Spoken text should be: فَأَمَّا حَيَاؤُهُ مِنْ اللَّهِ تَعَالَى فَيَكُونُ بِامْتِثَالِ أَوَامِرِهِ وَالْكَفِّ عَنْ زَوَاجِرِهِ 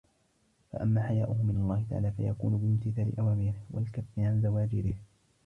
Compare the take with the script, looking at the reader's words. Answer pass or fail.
pass